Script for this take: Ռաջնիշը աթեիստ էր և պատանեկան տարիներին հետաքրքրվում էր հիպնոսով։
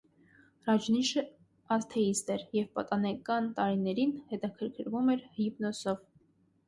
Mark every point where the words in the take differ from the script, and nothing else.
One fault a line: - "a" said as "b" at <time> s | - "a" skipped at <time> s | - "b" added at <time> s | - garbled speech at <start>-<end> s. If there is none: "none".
none